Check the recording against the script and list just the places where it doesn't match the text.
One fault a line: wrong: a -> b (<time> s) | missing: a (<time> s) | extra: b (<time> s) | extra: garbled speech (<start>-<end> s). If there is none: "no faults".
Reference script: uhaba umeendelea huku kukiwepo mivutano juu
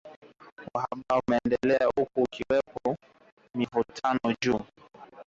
no faults